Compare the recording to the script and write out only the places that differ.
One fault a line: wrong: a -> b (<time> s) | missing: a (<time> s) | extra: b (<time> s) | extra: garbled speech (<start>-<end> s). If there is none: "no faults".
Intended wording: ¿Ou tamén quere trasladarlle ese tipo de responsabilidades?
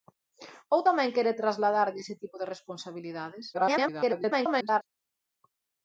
extra: garbled speech (3.5-4.8 s)